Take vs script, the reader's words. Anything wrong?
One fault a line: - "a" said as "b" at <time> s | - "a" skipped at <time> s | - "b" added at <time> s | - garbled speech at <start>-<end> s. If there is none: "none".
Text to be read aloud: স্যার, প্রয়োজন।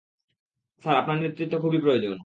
- "আপনার নেতৃত্ব খুবই" added at 1.0 s